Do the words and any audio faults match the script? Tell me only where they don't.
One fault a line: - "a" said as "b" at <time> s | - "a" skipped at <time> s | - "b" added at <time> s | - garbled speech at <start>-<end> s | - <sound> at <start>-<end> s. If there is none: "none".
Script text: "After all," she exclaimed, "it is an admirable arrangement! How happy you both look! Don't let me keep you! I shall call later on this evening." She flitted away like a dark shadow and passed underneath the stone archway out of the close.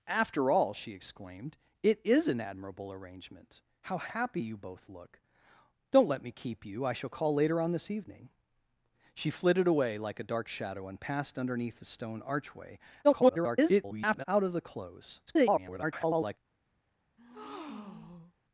- garbled speech at 13.0-14.2 s
- garbled speech at 15.3-16.4 s
- breath at 17.2-18.3 s